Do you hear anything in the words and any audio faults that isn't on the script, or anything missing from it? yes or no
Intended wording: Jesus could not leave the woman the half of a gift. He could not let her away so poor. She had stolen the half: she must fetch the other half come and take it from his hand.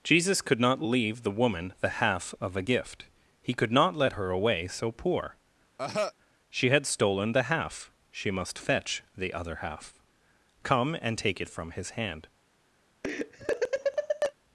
yes